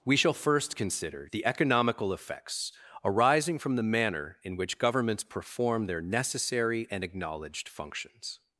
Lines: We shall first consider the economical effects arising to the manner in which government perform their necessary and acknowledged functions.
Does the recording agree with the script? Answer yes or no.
no